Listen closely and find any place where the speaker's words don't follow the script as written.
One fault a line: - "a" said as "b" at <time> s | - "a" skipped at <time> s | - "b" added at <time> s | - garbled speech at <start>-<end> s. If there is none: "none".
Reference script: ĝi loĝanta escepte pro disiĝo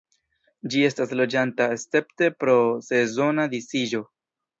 - "estas" added at 0.8 s
- "sezona" added at 2.9 s